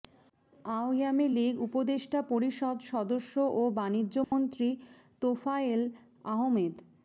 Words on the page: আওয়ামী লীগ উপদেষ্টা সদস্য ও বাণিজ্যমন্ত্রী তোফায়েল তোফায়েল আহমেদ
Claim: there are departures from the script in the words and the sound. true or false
true